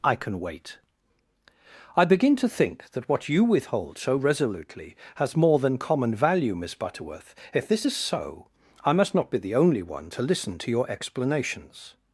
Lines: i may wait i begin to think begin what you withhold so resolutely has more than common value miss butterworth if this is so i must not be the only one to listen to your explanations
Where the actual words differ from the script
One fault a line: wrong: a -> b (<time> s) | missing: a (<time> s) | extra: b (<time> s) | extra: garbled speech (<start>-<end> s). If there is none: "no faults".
wrong: may -> can (0.1 s)
wrong: begin -> that (2.9 s)